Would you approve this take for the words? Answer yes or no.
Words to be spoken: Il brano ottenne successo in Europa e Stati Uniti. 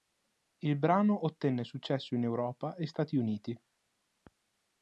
yes